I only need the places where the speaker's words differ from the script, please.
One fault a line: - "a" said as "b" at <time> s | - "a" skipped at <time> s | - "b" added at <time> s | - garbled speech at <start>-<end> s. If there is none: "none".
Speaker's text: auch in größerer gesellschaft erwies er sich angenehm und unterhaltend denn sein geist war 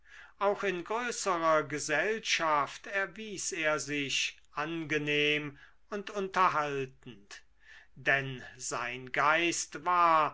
none